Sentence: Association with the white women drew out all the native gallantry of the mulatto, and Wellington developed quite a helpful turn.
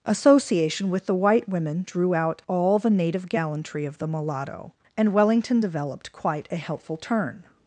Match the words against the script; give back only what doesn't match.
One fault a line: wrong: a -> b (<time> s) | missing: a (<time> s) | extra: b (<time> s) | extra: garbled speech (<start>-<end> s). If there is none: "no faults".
no faults